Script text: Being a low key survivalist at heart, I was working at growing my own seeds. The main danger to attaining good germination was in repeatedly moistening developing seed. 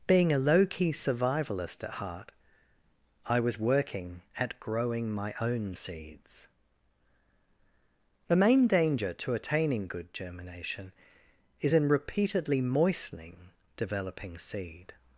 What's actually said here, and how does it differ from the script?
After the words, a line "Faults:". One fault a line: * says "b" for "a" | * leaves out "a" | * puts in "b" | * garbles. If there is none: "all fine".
Being a low key survivalist at heart, I was working at growing my own seeds. The main danger to attaining good germination is in repeatedly moistening developing seed.
Faults:
* says "is" for "was"